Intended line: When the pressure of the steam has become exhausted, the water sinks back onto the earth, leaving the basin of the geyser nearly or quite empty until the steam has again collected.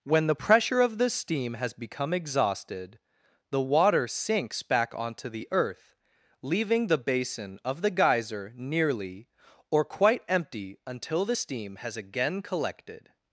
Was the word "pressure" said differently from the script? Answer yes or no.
no